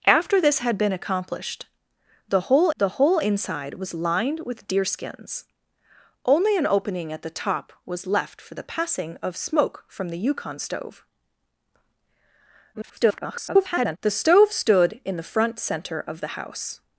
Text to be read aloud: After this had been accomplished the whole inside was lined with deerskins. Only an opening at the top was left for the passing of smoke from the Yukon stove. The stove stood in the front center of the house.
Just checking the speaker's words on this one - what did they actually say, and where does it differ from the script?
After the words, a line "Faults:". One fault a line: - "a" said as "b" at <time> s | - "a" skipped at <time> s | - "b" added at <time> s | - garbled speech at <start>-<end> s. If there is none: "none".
After this had been accomplished the whole the whole inside was lined with deerskins. Only an opening at the top was left for the passing of smoke from the Yukon stove. [garbled] The stove stood in the front center of the house.
Faults:
- "the whole" added at 2.8 s
- garbled speech at 12.7-14.0 s